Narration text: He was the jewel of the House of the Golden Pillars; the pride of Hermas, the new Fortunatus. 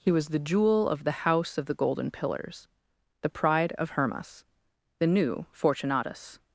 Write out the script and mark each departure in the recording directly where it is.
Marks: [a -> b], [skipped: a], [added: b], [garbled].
He was the jewel of the House of the Golden Pillars; the pride of Hermas, the new Fortunatus.